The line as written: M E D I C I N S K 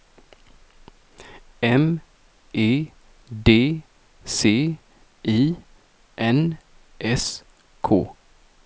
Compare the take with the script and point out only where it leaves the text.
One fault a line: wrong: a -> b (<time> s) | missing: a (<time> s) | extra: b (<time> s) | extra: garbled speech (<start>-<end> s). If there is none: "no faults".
missing: I (3.8 s)